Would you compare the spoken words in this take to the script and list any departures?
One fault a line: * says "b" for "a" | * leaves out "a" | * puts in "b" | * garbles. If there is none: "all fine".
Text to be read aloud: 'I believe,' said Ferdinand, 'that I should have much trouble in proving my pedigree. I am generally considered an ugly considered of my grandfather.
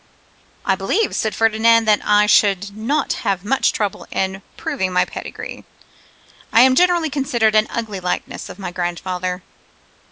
* puts in "not"
* says "likeness" for "considered"